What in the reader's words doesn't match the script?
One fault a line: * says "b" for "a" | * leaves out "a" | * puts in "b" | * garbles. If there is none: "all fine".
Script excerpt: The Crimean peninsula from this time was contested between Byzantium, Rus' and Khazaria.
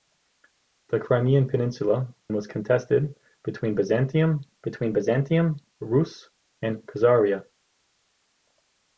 * says "was contested between Byzantium" for "from this time was contested"